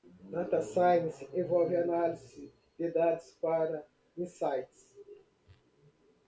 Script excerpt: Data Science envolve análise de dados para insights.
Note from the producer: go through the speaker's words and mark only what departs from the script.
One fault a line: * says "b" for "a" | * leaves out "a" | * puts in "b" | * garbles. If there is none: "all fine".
all fine